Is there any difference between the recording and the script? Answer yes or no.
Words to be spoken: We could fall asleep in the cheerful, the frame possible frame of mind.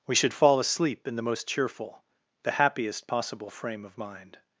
yes